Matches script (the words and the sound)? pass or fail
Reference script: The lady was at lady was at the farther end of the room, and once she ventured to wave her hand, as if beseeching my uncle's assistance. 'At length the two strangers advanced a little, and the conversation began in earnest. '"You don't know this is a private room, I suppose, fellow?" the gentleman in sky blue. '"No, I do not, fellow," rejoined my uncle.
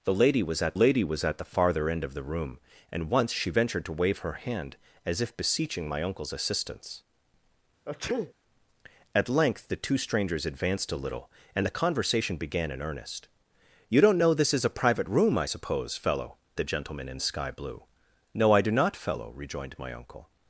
fail